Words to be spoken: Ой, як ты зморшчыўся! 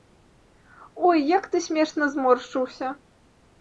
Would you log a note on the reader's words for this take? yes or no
yes